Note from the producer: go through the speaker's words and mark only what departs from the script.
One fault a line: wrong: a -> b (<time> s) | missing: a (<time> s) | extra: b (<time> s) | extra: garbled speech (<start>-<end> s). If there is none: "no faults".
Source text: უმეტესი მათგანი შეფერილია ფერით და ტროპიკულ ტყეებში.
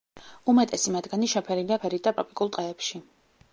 no faults